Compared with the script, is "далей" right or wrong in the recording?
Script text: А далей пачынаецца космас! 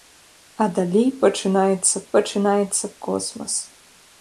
right